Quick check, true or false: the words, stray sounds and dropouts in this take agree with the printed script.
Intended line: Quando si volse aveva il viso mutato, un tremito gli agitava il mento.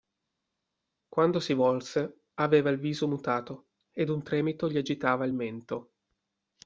false